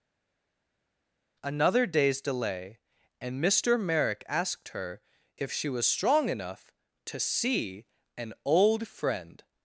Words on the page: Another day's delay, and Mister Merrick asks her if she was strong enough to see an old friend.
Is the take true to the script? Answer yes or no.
no